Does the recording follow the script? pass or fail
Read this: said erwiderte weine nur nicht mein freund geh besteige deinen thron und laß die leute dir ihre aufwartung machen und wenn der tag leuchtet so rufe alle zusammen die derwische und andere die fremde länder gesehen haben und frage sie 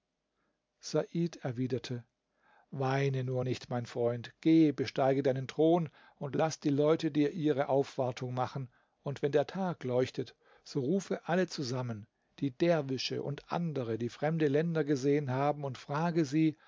pass